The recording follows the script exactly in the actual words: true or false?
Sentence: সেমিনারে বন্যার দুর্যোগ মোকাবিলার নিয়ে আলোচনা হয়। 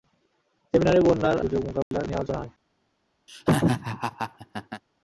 true